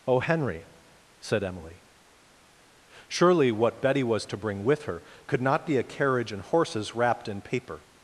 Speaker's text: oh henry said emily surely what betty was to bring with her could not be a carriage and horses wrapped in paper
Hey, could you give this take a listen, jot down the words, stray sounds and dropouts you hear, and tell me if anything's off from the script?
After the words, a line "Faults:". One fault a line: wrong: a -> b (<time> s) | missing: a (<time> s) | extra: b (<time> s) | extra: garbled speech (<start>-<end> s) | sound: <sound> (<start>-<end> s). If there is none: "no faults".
oh henry said emily surely what betty was to bring with her could not be a carriage and horses wrapped in paper
Faults:
no faults